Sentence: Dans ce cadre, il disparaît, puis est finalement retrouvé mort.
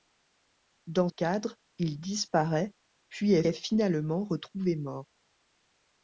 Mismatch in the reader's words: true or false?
true